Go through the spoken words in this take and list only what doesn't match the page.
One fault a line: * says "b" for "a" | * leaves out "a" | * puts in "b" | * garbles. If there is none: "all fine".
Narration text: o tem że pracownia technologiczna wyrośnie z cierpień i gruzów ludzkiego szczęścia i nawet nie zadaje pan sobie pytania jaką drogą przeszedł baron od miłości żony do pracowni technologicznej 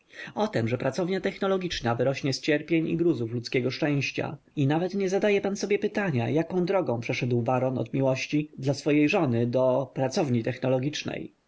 * puts in "dla swojej"